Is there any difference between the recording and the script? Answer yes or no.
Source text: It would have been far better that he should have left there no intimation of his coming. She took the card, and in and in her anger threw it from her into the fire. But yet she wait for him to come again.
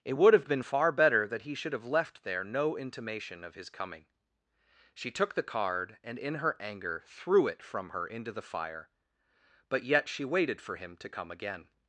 yes